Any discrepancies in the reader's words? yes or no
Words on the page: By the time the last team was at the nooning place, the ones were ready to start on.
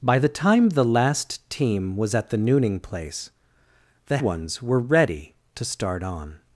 no